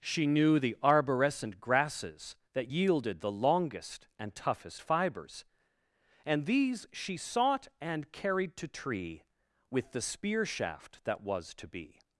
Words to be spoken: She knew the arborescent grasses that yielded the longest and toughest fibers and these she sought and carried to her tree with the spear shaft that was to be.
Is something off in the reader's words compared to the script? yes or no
yes